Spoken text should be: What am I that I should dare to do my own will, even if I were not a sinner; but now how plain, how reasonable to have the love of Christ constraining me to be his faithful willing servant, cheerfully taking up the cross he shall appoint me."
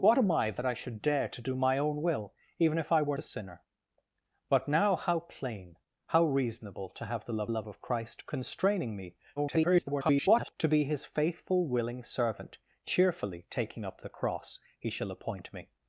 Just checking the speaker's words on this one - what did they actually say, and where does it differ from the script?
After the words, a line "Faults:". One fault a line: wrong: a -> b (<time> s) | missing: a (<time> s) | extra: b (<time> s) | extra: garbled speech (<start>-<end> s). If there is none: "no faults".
What am I that I should dare to do my own will, even if I were a sinner; but now how plain, how reasonable to have the love love of Christ constraining me [garbled] to be his faithful willing servant, cheerfully taking up the cross he shall appoint me."
Faults:
missing: not (3.2 s)
extra: love (7.5 s)
extra: garbled speech (9.4-10.5 s)